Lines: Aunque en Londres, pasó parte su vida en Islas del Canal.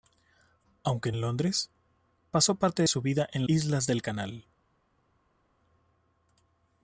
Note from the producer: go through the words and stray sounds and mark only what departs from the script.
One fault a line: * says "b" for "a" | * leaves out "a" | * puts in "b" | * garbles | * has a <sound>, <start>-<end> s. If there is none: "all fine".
all fine